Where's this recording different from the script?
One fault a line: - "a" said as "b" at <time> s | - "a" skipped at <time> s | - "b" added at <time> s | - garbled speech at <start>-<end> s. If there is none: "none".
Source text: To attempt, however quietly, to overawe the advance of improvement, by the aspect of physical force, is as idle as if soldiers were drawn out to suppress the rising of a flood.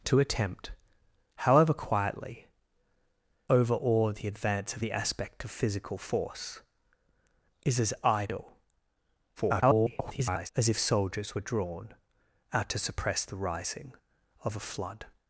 - "to" skipped at 2.5 s
- "improvement by" skipped at 4.8 s
- garbled speech at 9.4-10.5 s